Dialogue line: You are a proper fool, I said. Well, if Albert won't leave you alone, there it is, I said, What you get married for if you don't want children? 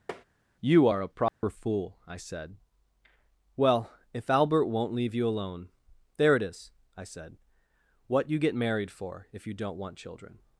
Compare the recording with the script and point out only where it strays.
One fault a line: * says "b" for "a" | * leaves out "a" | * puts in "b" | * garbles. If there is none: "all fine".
all fine